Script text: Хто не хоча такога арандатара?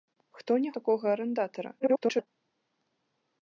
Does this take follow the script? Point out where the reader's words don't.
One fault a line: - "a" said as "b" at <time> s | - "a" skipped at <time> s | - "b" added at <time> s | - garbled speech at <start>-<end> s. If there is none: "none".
- "хоча" skipped at 0.7 s
- garbled speech at 1.8-2.3 s